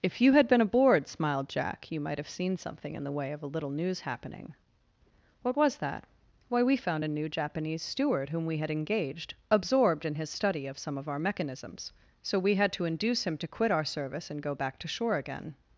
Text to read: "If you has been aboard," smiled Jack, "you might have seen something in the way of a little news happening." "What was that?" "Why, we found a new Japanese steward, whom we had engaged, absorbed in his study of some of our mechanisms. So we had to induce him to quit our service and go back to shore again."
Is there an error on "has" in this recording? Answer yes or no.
yes